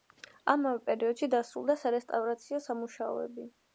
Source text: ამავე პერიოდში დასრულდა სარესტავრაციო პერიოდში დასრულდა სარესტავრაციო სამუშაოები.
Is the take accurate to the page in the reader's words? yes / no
no